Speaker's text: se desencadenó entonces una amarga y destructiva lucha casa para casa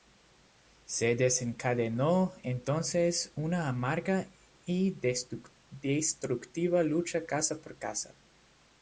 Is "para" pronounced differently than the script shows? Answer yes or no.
yes